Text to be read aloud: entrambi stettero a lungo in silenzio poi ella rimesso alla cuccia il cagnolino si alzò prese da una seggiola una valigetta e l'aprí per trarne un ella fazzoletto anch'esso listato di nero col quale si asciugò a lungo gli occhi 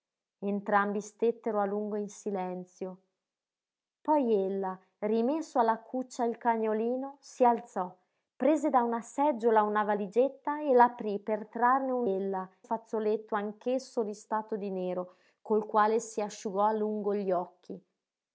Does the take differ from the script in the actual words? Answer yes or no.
no